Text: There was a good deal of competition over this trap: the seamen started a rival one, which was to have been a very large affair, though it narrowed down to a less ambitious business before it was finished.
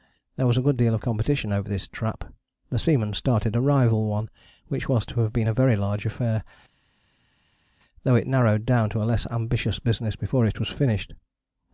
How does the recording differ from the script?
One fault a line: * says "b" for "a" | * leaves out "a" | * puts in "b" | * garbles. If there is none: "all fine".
all fine